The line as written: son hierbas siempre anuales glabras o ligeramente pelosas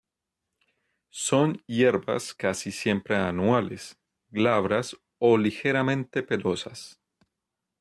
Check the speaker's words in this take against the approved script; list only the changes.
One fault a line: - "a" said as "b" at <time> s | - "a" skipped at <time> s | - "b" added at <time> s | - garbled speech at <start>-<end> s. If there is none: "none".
- "casi" added at 2.3 s